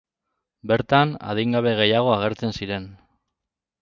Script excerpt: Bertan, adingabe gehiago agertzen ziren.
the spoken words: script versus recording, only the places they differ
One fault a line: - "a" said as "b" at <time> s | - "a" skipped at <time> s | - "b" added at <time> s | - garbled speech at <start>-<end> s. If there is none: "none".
none